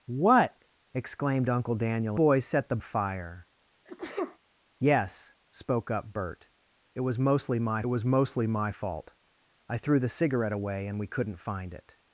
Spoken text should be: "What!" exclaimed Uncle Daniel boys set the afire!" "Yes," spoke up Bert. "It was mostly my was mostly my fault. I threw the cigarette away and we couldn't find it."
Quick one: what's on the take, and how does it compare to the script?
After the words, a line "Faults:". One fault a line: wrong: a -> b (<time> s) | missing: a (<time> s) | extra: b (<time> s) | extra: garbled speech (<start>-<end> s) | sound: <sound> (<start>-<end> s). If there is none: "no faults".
"What!" exclaimed Uncle Daniel boys set the afire!" "Yes," spoke up Bert. "It was mostly my was mostly my fault. I threw the cigarette away and we couldn't find it."
Faults:
sound: sneeze (3.9-4.4 s)